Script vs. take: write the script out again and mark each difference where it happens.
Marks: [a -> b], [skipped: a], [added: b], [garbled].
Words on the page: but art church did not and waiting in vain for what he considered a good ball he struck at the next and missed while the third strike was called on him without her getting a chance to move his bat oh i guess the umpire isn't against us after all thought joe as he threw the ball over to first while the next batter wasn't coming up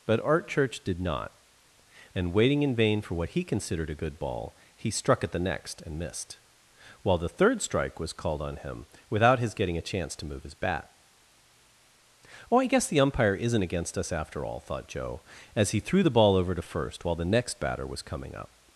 but art church did not and waiting in vain for what he considered a good ball he struck at the next and missed while the third strike was called on him without [her -> his] getting a chance to move his bat oh i guess the umpire isn't against us after all thought joe as he threw the ball over to first while the next batter [wasn't -> was] coming up